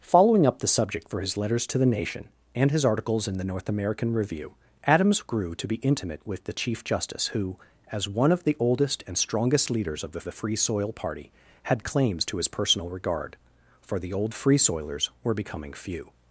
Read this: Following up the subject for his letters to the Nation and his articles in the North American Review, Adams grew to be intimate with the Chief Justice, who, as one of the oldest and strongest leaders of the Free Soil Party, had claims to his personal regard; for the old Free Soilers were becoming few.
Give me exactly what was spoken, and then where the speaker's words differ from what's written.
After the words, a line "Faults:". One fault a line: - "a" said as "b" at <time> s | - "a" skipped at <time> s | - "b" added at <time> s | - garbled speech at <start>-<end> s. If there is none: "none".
Following up the subject for his letters to the Nation and his articles in the North American Review, Adams grew to be intimate with the Chief Justice, who, as one of the oldest and strongest leaders of the the Free Soil Party, had claims to his personal regard; for the old Free Soilers were becoming few.
Faults:
- "the" added at 10.2 s